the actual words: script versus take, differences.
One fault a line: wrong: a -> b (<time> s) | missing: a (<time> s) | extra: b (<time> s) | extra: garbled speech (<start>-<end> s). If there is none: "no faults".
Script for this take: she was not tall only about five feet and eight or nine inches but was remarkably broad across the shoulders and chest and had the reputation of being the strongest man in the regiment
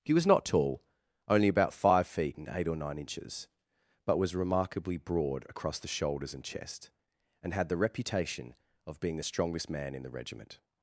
wrong: she -> he (0.0 s)